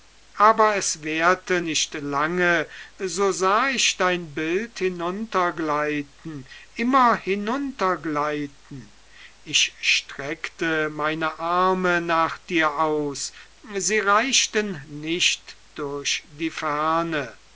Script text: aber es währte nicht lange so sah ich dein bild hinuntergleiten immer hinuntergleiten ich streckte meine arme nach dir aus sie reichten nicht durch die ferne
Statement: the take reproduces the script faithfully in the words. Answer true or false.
true